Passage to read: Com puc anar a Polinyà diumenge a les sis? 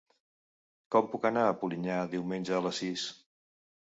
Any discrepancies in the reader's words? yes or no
no